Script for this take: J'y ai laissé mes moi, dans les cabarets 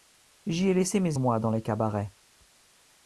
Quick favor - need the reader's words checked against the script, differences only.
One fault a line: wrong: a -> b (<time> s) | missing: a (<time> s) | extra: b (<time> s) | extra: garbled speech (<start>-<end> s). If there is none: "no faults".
no faults